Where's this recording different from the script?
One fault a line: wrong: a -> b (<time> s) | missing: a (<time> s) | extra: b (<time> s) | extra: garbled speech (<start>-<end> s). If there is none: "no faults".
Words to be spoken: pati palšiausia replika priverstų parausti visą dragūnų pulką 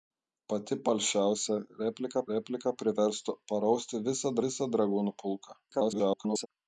extra: replika (2.3 s)
extra: visą (4.5 s)
extra: garbled speech (5.7-6.5 s)